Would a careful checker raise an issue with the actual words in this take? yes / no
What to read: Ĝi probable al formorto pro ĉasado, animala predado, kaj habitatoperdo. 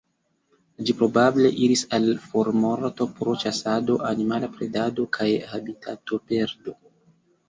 yes